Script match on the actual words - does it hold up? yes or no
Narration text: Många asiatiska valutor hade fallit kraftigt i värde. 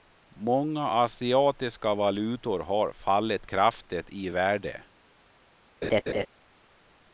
no